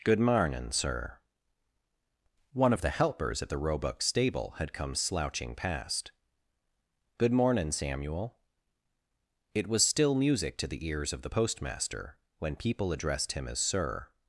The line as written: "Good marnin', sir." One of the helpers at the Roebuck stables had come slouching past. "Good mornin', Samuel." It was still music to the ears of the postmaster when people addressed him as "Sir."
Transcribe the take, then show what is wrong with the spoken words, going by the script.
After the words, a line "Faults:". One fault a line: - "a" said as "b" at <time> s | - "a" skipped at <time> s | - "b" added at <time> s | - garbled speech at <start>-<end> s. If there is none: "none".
"Good marnin', sir." One of the helpers at the Roebuck stable had come slouching past. "Good mornin', Samuel." It was still music to the ears of the postmaster when people addressed him as "Sir."
Faults:
- "stables" said as "stable" at 4.0 s